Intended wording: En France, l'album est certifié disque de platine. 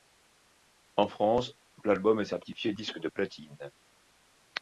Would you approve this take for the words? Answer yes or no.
yes